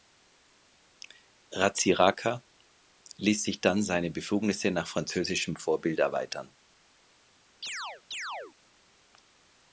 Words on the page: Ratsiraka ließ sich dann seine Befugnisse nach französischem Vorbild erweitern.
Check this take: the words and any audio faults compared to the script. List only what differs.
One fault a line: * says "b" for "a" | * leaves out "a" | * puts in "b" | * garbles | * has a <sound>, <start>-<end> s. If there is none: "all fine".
* has a chirp, 7.6-8.5 s